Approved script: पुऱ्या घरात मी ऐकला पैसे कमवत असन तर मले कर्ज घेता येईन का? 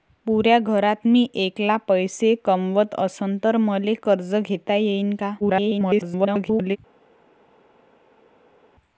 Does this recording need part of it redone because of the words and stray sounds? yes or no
yes